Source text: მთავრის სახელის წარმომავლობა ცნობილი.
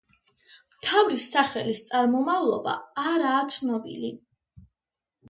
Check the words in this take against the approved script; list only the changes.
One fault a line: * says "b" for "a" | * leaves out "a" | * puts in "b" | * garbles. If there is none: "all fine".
* puts in "არაა"